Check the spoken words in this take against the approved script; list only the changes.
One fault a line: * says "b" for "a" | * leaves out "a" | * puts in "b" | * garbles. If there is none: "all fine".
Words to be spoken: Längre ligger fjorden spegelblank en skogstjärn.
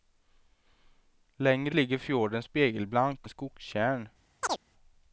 all fine